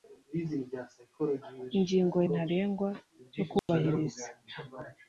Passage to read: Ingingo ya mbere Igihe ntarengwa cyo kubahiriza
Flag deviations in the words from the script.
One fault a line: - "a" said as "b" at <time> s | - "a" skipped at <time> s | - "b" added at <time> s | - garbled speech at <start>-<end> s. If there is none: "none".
- "ya mbere Igihe" skipped at 2.2 s